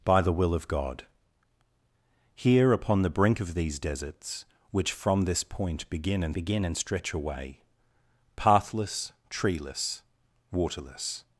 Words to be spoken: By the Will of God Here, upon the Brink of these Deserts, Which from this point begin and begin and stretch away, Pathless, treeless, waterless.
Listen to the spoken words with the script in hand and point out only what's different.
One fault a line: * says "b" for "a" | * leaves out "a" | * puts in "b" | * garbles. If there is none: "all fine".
all fine